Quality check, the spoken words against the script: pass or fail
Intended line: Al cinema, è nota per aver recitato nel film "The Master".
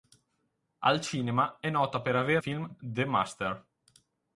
fail